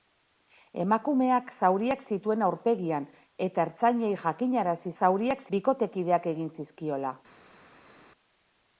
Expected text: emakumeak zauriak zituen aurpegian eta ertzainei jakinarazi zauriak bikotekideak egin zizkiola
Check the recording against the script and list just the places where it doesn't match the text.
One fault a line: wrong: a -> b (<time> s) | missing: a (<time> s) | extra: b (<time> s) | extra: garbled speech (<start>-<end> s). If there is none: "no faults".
no faults